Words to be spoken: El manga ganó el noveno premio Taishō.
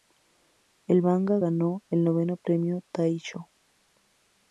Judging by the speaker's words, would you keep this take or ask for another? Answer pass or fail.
pass